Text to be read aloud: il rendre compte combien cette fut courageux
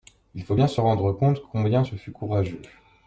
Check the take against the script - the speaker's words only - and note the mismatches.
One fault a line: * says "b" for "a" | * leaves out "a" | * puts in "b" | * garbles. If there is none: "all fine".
* puts in "faut bien se"
* says "ce" for "cette"